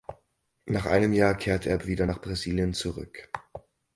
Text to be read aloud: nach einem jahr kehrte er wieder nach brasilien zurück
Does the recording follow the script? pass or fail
pass